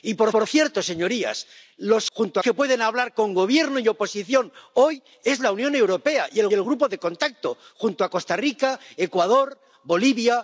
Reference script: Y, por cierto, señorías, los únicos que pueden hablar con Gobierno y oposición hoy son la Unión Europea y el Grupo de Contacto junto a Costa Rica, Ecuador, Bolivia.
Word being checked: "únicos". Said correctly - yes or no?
no